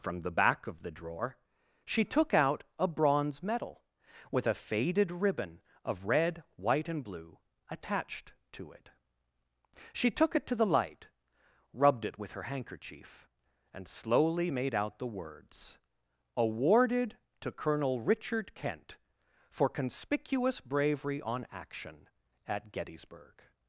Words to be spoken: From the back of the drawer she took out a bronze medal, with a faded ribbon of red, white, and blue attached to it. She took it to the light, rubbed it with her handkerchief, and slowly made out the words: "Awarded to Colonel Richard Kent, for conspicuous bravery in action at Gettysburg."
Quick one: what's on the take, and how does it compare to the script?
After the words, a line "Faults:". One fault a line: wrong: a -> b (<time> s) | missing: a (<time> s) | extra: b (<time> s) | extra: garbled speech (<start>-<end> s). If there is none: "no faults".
From the back of the drawer she took out a bronze medal, with a faded ribbon of red, white, and blue attached to it. She took it to the light, rubbed it with her handkerchief, and slowly made out the words: "Awarded to Colonel Richard Kent, for conspicuous bravery on action at Gettysburg."
Faults:
wrong: in -> on (21.2 s)